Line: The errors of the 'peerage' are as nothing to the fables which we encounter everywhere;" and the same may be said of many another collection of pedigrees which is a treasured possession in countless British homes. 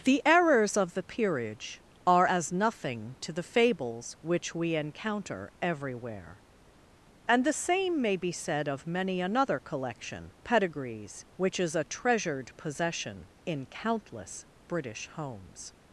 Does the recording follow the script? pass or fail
fail